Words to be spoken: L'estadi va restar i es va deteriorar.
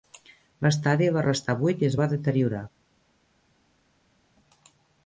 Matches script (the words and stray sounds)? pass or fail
fail